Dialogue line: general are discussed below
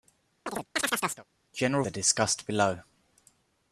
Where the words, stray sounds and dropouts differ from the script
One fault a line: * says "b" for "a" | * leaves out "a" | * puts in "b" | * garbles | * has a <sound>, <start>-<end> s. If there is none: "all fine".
* has a chirp, 0.5-1.3 s